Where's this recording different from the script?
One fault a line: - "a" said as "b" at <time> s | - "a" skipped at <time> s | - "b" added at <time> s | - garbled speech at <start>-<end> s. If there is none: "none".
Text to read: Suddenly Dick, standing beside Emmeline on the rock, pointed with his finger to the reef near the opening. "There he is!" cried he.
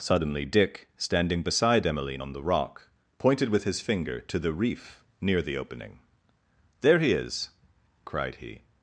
none